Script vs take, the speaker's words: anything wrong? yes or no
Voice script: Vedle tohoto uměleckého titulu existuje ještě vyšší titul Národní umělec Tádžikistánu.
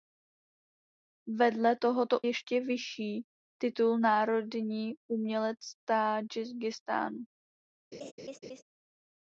yes